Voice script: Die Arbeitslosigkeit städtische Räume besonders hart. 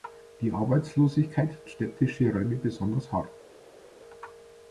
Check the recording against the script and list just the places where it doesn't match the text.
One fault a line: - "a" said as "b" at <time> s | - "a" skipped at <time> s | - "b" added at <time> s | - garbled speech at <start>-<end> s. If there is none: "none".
none